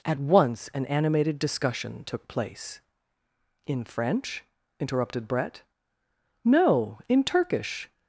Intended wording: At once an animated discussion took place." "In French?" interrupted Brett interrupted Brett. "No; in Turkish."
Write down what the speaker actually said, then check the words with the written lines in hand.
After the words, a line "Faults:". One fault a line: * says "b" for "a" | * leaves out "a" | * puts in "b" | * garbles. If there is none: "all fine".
At once an animated discussion took place." "In French?" interrupted Brett. "No; in Turkish."
Faults:
* leaves out "interrupted Brett"